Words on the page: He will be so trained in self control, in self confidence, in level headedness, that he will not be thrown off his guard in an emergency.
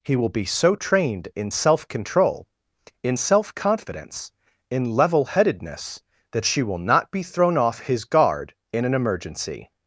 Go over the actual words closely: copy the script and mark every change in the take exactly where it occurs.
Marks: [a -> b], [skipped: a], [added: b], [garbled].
He will be so trained in self control, in self confidence, in level headedness, that [he -> she] will not be thrown off his guard in an emergency.